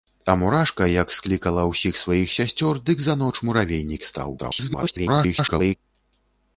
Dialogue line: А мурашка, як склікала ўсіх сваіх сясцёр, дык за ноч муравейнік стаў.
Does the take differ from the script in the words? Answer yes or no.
yes